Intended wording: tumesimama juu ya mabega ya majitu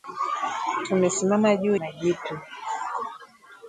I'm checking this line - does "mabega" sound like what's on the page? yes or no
no